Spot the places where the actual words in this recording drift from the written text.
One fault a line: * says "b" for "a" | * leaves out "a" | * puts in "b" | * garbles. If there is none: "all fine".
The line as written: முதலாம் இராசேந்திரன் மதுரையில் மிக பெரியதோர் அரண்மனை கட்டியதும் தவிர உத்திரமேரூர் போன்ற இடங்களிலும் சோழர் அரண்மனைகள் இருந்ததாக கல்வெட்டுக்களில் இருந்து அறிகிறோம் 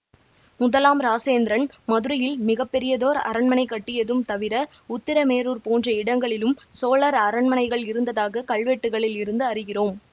all fine